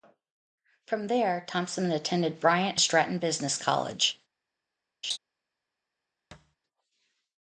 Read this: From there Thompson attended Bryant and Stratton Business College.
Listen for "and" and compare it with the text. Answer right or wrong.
wrong